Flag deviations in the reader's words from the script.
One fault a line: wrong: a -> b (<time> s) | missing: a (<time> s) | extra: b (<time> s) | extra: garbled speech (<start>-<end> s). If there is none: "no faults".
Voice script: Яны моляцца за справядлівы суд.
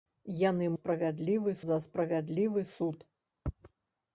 wrong: моляцца -> справядлівы (0.8 s)